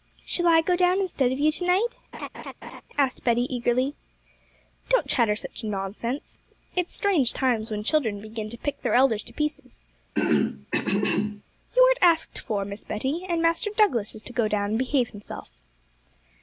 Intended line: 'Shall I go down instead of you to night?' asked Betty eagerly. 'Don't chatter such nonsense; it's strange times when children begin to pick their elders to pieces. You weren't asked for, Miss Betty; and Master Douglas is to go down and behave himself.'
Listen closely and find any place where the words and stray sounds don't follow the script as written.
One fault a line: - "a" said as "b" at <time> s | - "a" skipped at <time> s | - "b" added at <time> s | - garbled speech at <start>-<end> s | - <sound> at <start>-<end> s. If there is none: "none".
- laugh at 2.1-2.8 s
- throat clearing at 10.1-11.4 s